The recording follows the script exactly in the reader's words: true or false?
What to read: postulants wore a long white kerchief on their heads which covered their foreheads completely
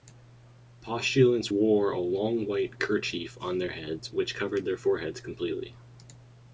true